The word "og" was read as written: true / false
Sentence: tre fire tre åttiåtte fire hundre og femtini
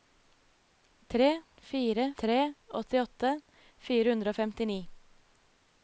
true